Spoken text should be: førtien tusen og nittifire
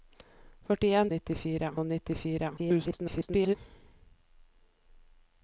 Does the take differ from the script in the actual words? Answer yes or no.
yes